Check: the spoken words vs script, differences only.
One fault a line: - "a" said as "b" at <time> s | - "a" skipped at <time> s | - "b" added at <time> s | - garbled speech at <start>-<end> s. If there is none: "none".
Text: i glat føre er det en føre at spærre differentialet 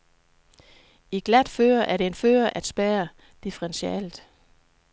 none